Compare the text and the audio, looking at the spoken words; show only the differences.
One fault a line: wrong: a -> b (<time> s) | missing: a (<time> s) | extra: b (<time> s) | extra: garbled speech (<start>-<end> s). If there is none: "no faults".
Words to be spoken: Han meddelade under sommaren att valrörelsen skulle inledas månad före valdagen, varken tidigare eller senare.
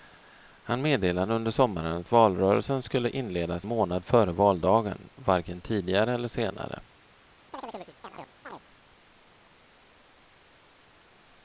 no faults